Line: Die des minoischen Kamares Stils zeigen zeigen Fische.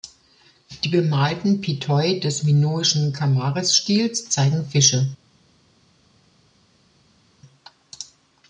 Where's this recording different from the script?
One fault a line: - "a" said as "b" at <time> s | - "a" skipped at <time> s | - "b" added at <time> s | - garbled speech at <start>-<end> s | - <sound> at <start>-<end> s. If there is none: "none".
- "bemalten Pithoi" added at 0.9 s
- "zeigen" skipped at 4.7 s